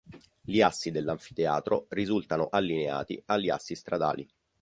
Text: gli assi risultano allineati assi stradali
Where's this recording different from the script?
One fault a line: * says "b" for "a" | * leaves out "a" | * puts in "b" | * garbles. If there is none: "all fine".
* puts in "dell'anfiteatro"
* puts in "agli"